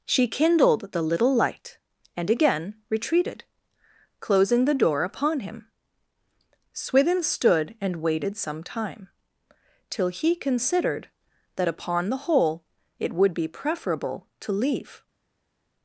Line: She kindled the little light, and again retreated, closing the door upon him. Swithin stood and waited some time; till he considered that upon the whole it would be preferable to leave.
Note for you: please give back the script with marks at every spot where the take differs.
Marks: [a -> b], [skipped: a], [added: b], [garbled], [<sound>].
She kindled the little light, and again retreated, closing the door upon him. Swithin stood and waited some time; till he considered that upon the whole it would be preferable to leave.